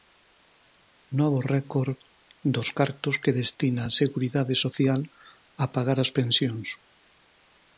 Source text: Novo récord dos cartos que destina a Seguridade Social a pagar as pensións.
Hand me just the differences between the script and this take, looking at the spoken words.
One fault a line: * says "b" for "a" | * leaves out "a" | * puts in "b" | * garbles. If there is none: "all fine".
all fine